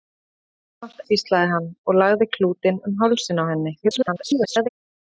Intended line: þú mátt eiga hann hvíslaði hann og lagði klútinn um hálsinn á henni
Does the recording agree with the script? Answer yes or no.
no